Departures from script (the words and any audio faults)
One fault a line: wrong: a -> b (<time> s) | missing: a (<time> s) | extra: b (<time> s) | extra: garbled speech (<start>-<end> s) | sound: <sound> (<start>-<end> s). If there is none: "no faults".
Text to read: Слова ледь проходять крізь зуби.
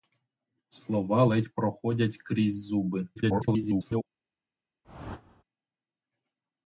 extra: garbled speech (3.2-4.1 s)
sound: whoosh (4.8-5.4 s)